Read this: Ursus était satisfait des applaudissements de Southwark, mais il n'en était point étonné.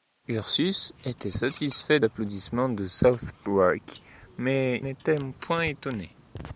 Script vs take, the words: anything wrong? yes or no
yes